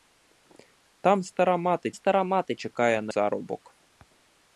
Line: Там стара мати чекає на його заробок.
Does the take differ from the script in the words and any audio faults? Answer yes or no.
yes